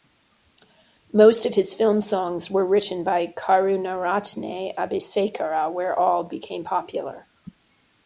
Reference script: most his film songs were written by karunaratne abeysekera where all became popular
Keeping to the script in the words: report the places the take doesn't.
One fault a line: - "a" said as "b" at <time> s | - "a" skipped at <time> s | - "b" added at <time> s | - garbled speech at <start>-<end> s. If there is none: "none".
- "of" added at 1.4 s